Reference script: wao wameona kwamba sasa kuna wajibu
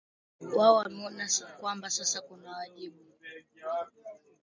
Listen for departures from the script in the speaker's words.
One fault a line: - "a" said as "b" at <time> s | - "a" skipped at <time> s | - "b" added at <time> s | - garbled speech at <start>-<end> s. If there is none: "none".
none